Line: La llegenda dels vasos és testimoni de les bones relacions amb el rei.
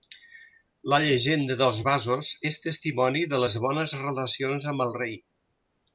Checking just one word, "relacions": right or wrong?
right